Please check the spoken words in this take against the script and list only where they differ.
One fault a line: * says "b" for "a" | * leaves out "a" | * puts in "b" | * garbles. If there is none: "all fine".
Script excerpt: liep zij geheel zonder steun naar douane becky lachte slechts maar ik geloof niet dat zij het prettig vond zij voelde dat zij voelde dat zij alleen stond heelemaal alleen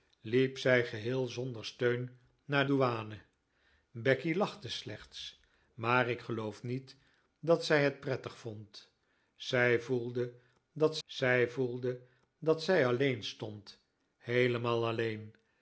all fine